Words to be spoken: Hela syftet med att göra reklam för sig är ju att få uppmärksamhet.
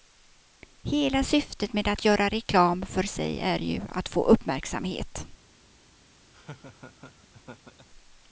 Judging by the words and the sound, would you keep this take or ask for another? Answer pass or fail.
fail